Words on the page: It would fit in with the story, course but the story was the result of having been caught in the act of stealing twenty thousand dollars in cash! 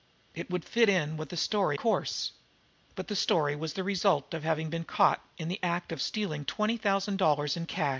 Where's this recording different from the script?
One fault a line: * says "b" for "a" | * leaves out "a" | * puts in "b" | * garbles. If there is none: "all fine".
all fine